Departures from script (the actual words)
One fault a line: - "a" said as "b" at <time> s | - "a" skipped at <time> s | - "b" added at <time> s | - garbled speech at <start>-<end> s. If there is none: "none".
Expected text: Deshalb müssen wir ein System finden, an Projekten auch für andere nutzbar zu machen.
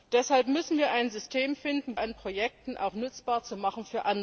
none